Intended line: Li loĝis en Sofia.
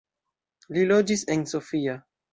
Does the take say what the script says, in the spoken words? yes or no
yes